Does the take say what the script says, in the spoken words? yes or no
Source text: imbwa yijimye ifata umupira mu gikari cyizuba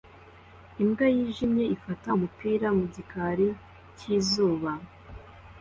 yes